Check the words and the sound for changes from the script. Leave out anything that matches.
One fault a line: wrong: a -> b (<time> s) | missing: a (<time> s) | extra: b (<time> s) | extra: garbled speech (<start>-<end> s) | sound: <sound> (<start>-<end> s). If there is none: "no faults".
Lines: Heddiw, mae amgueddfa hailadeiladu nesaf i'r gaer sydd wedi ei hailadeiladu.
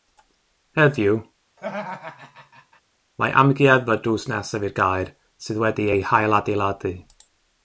sound: laugh (1.6-2.8 s)
wrong: hailadeiladu -> drws (4.1 s)